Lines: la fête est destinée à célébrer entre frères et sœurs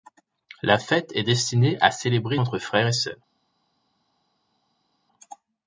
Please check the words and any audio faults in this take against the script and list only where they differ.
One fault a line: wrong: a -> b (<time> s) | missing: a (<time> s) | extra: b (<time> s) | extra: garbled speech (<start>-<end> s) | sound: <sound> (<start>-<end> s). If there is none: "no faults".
no faults